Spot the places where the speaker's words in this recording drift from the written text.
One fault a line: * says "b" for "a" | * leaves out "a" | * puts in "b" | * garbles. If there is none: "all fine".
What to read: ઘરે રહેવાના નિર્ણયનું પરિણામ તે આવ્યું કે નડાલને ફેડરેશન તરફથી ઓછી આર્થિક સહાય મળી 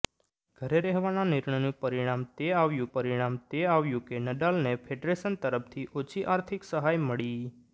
* puts in "પરિણામ તે આવ્યું"